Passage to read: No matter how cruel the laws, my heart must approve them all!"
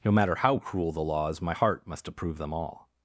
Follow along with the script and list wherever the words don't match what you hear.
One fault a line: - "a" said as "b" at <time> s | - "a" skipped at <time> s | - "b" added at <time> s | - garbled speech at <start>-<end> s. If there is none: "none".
none